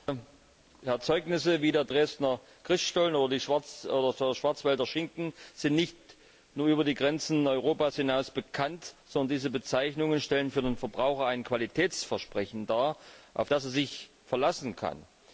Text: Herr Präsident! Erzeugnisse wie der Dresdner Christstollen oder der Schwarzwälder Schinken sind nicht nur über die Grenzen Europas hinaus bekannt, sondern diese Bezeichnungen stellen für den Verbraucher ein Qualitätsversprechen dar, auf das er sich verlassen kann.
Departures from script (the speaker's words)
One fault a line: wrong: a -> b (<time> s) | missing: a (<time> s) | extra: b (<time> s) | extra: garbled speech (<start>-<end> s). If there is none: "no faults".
no faults